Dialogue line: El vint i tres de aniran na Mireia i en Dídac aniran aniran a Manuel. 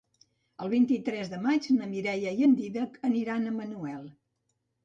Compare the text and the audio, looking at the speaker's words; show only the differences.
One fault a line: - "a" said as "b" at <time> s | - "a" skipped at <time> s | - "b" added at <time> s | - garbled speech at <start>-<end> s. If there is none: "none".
- "aniran" said as "maig" at 1.5 s
- "aniran" skipped at 3.5 s